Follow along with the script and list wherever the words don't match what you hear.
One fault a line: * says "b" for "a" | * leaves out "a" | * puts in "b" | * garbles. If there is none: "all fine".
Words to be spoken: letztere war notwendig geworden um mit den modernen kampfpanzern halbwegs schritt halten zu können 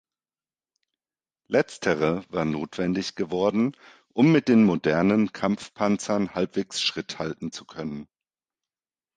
all fine